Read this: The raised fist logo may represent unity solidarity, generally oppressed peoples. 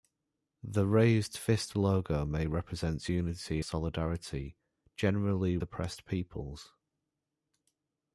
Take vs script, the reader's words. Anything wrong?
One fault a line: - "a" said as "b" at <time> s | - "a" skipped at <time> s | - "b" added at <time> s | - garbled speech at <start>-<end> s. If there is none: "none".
none